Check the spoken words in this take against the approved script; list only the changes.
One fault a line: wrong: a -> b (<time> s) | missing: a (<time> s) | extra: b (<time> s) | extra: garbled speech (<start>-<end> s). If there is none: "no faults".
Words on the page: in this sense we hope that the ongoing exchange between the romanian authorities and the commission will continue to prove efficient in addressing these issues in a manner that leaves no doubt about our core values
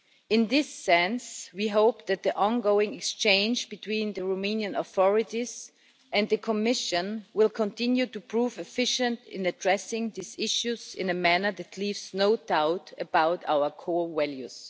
no faults